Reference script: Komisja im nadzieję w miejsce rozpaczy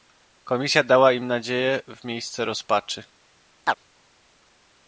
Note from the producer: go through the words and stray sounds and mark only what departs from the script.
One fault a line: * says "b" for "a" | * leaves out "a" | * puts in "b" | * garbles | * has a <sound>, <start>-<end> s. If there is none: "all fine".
* puts in "dała"
* has a chirp, 3.6-3.8 s